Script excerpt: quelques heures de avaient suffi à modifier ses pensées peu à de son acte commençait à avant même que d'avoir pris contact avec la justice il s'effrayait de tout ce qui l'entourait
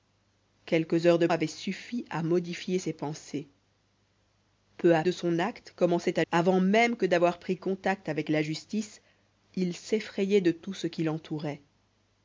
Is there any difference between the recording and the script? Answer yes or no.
no